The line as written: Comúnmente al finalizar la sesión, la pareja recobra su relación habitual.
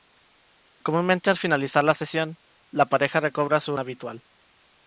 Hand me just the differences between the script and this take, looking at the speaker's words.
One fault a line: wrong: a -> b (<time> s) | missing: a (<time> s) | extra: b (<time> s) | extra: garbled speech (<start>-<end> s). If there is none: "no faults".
missing: relación (3.8 s)